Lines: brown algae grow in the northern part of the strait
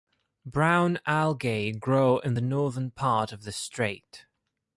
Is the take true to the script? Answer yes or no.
yes